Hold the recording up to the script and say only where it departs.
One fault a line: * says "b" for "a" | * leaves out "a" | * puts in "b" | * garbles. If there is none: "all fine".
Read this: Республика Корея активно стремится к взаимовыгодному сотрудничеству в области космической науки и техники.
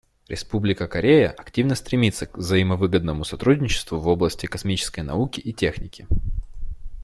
all fine